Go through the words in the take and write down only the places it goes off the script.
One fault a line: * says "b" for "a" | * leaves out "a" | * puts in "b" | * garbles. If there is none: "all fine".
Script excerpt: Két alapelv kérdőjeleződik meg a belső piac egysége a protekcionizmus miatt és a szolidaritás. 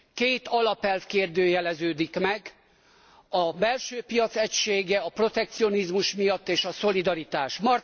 all fine